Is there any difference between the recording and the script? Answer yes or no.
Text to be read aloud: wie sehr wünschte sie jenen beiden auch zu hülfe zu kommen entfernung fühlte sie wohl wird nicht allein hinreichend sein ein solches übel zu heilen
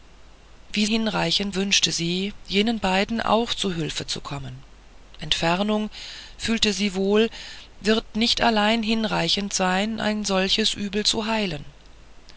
yes